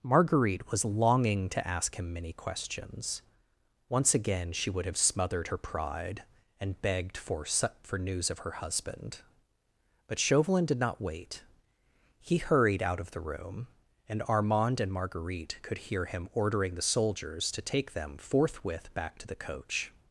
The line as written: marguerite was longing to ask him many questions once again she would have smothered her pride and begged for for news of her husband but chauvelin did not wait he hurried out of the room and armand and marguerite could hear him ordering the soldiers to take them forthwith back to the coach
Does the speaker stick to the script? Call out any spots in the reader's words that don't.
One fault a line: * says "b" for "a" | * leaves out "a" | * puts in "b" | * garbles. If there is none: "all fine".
all fine